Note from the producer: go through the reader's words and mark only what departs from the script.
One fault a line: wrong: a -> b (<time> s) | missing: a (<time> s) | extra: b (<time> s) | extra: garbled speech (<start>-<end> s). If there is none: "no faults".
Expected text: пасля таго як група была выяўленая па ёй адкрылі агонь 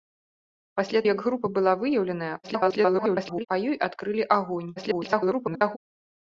missing: таго (1.0 s)
extra: garbled speech (2.4-3.5 s)
extra: garbled speech (4.8-5.8 s)